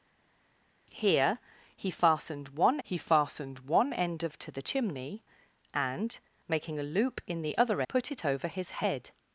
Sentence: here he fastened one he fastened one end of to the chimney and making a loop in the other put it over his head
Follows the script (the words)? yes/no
yes